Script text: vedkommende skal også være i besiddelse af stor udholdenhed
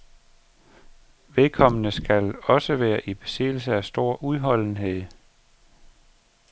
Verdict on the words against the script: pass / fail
pass